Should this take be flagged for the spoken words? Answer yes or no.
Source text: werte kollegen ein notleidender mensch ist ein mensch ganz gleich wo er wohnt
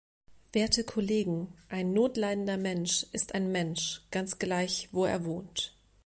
no